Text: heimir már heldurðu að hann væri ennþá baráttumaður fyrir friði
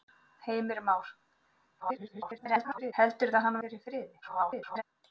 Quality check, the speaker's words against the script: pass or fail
fail